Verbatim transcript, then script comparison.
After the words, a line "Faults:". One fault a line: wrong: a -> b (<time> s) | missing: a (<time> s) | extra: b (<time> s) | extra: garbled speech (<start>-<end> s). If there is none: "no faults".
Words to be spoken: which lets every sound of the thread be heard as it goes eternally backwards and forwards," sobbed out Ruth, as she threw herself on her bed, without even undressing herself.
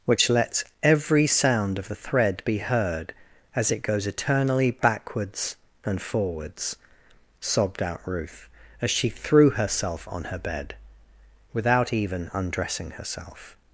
which lets every sound of the thread be heard as it goes eternally backwards and forwards," sobbed out Ruth, as she threw herself on her bed, without even undressing herself.
Faults:
no faults